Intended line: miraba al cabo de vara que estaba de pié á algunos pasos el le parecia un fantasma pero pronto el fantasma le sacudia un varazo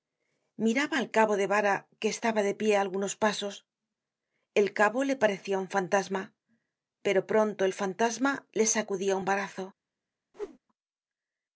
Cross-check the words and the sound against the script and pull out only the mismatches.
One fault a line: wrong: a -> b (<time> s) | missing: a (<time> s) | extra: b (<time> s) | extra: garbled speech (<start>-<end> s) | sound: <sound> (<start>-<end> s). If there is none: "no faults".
extra: cabo (4.8 s)
sound: whoosh (10.3-10.6 s)